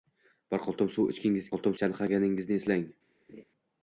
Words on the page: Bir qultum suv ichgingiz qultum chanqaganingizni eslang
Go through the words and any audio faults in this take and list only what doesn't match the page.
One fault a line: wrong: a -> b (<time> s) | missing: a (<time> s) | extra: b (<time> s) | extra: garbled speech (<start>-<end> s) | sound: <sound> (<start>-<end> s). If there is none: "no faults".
sound: laugh (3.3-3.4 s)